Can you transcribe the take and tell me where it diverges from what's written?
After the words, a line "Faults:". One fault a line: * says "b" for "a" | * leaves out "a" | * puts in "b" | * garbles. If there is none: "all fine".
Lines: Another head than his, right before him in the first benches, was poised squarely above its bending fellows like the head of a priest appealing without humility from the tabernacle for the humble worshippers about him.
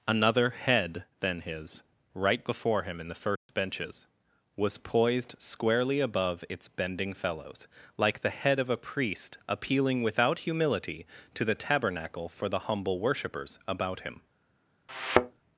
Another head than his, right before him in the first benches, was poised squarely above its bending fellows like the head of a priest appealing without humility to the tabernacle for the humble worshippers about him.
Faults:
* says "to" for "from"